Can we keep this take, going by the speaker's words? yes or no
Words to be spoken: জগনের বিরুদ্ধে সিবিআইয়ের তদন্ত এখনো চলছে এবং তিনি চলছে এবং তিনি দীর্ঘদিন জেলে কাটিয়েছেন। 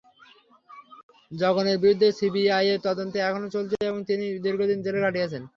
no